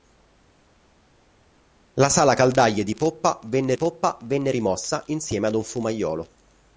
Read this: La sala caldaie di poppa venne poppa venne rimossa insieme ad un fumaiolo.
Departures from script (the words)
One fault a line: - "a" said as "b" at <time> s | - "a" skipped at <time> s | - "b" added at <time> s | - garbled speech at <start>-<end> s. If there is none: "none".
none